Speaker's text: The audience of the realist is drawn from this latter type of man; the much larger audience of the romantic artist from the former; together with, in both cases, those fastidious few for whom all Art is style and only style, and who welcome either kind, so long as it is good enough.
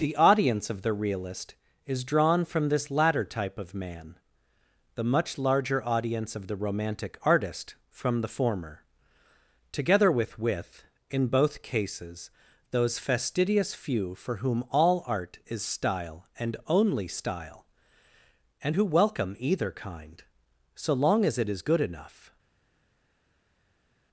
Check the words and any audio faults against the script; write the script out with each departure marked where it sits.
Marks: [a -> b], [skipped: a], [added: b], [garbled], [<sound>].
The audience of the realist is drawn from this latter type of man; the much larger audience of the romantic artist from the former; together with, [added: with] in both cases, those fastidious few for whom all Art is style and only style, and who welcome either kind, so long as it is good enough.